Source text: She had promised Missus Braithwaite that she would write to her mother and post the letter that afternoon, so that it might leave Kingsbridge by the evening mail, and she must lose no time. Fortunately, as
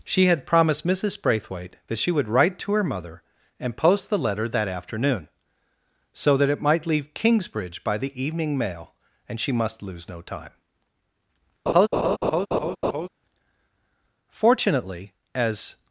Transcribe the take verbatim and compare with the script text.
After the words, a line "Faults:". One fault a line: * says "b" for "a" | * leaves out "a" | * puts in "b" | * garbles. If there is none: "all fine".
She had promised Missus Braithwaite that she would write to her mother and post the letter that afternoon, so that it might leave Kingsbridge by the evening mail, and she must lose no time. Fortunately, as
Faults:
all fine